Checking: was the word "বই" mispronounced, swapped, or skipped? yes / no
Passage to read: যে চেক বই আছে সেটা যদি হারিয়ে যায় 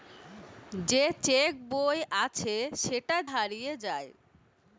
no